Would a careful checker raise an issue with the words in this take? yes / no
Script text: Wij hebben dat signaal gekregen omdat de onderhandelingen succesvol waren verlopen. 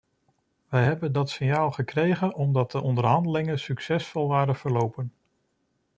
no